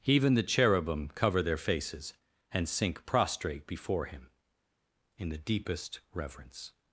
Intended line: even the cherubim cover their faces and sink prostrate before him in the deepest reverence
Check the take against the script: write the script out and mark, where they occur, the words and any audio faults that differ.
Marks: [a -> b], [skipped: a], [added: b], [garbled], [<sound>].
even the cherubim cover their faces and sink prostrate before him in the deepest reverence